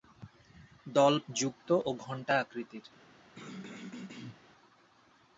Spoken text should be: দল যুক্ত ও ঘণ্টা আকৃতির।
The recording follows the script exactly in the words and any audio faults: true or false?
false